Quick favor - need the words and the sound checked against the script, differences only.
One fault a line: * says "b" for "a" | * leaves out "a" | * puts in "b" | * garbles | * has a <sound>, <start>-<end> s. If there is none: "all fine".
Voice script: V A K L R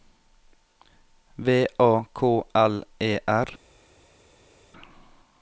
* puts in "E"